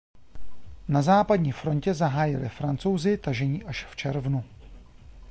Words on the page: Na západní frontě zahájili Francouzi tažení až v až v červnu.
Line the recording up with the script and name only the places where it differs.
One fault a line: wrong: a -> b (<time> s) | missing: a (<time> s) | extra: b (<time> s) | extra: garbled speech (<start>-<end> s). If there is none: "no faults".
missing: až v (4.0 s)